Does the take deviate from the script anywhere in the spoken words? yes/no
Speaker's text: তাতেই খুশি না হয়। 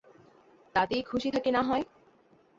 yes